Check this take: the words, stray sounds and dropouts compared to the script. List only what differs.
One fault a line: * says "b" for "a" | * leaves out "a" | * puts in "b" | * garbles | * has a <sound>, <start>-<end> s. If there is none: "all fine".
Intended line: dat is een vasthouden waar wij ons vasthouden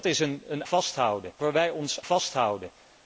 all fine